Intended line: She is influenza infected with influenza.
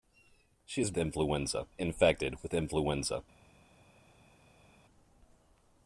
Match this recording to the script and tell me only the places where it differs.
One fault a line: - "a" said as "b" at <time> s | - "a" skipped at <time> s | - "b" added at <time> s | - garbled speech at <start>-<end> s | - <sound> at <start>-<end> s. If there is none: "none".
none